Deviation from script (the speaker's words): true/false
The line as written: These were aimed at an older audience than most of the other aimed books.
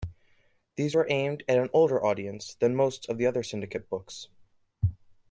true